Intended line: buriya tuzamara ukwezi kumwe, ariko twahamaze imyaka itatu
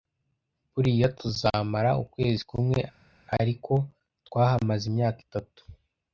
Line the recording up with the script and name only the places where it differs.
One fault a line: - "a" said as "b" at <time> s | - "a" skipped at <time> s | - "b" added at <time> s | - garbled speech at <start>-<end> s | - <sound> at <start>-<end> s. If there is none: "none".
none